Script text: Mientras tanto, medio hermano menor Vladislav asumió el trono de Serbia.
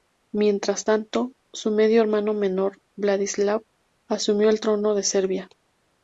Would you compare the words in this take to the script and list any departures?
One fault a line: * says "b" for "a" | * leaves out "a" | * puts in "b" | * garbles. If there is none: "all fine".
* puts in "su"